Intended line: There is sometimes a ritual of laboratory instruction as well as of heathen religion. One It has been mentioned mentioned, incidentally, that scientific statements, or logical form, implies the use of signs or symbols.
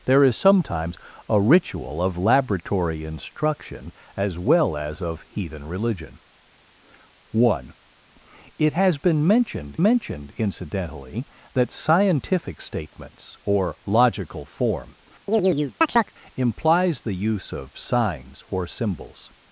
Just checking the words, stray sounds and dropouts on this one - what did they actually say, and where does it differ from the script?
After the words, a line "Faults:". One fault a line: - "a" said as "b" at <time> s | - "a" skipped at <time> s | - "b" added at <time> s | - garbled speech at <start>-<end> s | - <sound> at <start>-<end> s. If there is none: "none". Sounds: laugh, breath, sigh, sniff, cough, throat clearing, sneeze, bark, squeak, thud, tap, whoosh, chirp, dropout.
There is sometimes a ritual of laboratory instruction as well as of heathen religion. One It has been mentioned mentioned, incidentally, that scientific statements, or logical form, implies the use of signs or symbols.
Faults:
- chirp at 15.3-16.1 s